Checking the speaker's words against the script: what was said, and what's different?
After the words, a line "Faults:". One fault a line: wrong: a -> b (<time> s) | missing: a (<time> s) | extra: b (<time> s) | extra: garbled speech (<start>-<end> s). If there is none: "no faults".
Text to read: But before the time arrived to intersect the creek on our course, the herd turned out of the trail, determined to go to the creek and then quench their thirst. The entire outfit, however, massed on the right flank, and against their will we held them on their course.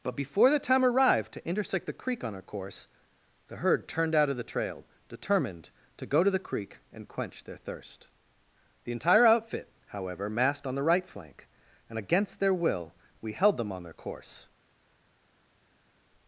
But before the time arrived to intersect the creek on our course, the herd turned out of the trail, determined to go to the creek and quench their thirst. The entire outfit, however, massed on the right flank, and against their will we held them on their course.
Faults:
missing: then (7.1 s)